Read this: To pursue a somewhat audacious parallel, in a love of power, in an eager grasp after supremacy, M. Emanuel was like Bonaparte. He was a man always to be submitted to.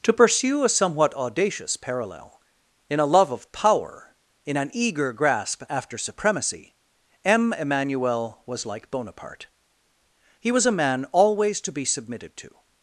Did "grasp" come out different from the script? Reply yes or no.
no